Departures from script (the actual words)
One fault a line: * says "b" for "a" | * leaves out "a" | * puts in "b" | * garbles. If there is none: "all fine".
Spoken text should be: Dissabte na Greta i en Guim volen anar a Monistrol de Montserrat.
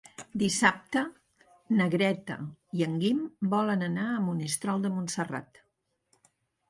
all fine